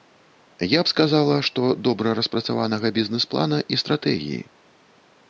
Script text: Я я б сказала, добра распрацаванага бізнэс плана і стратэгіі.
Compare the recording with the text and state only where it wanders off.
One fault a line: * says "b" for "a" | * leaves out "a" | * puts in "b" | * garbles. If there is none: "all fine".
* leaves out "я"
* puts in "што"